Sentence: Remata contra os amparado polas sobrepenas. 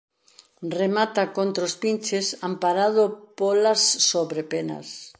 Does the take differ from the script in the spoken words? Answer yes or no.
yes